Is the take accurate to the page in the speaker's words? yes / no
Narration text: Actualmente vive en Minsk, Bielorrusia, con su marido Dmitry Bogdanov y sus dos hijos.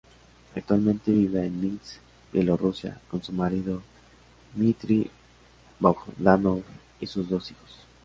yes